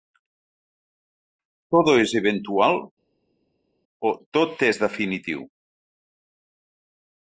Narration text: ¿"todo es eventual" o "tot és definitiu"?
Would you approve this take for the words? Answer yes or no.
yes